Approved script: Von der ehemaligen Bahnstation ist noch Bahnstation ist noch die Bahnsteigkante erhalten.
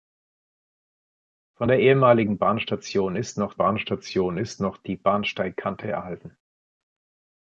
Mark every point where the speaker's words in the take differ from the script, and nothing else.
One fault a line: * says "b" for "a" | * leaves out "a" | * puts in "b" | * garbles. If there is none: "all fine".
all fine